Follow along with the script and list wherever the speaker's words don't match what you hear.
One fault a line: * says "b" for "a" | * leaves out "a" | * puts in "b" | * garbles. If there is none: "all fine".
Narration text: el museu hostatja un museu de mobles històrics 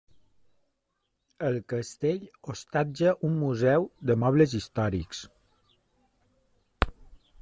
* says "castell" for "museu"